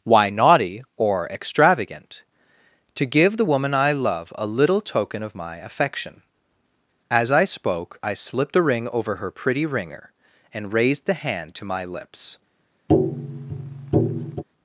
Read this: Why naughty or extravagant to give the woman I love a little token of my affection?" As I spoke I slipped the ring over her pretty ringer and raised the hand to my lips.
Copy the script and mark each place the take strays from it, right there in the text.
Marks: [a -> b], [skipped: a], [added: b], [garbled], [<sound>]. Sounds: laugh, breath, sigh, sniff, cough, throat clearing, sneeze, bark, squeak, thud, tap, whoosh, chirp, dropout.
Why naughty or extravagant to give the woman I love a little token of my affection?" As I spoke I slipped [the -> a] ring over her pretty ringer and raised the hand to my lips. [tap]